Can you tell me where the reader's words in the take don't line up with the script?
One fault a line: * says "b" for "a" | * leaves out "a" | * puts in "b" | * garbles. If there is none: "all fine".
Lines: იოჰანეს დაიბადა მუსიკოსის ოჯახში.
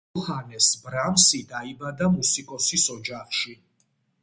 * puts in "ბრამსი"